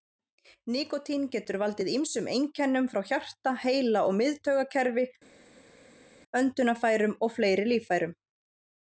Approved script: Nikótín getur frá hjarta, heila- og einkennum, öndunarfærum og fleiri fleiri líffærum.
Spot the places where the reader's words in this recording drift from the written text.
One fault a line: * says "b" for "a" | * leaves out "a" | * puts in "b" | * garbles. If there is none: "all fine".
* puts in "valdið ýmsum einkennum"
* says "miðtaugakerfi" for "einkennum"
* leaves out "fleiri"